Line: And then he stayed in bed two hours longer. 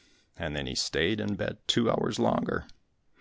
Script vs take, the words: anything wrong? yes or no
no